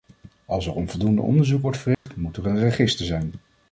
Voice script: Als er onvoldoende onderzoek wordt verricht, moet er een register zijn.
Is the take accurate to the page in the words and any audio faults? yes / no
no